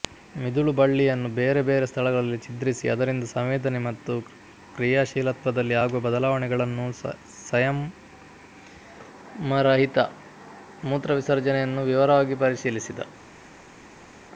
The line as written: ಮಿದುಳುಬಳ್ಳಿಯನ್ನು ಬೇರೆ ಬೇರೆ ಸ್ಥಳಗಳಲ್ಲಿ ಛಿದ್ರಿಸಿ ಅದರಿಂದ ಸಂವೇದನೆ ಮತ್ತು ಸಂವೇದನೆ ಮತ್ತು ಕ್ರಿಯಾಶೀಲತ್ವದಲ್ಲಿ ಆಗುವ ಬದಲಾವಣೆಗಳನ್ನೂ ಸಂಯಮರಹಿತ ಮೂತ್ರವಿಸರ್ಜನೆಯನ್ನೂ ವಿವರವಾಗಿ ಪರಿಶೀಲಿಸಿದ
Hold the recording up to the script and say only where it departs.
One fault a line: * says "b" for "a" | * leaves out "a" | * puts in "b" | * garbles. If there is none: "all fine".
* leaves out "ಸಂವೇದನೆ ಮತ್ತು"